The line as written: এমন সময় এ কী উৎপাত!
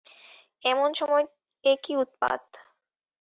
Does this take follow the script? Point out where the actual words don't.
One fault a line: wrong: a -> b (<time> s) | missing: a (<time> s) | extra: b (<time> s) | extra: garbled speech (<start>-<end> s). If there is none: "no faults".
no faults